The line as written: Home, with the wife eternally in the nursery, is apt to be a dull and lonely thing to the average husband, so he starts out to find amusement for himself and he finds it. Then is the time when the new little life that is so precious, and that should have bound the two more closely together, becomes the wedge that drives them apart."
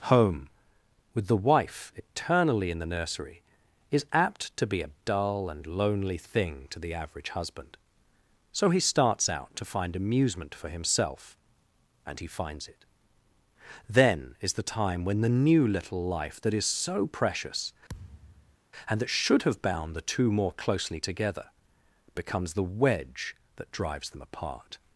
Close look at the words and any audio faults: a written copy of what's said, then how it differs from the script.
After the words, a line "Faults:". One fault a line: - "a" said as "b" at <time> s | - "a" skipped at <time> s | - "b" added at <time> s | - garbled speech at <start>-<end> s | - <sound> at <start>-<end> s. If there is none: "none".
Home, with the wife eternally in the nursery, is apt to be a dull and lonely thing to the average husband, so he starts out to find amusement for himself and he finds it. Then is the time when the new little life that is so precious, and that should have bound the two more closely together, becomes the wedge that drives them apart."
Faults:
- thud at 17.9-18.6 s